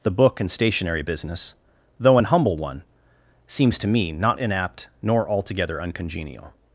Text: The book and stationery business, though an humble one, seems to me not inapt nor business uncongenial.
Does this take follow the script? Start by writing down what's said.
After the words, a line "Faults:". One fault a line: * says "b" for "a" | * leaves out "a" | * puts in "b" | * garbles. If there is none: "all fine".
The book and stationery business, though an humble one, seems to me not inapt nor altogether uncongenial.
Faults:
* says "altogether" for "business"